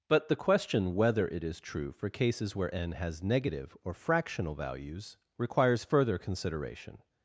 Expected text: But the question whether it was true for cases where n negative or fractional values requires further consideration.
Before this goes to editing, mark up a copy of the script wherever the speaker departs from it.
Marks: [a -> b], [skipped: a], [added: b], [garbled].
But the question whether it [was -> is] true for cases where n [added: has] negative or fractional values requires further consideration.